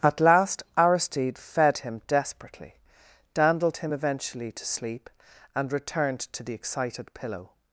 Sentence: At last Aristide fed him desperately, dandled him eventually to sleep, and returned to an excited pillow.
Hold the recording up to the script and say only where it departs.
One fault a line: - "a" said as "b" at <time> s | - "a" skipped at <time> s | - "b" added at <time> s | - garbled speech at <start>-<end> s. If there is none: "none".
- "an" said as "the" at 6.4 s